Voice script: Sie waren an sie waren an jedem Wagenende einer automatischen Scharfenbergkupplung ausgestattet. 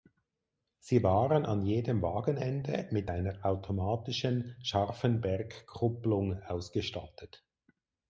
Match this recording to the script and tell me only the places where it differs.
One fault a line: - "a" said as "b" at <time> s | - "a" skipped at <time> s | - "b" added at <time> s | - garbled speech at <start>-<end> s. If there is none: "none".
- "sie waren an" skipped at 1.6 s
- "mit" added at 2.9 s